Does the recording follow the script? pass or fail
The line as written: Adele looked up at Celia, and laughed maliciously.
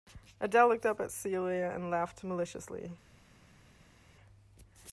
pass